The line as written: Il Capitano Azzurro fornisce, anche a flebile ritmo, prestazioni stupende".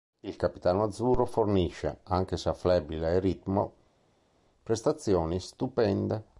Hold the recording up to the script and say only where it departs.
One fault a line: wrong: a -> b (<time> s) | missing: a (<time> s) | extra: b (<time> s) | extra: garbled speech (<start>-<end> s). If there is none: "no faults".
extra: se (2.4 s)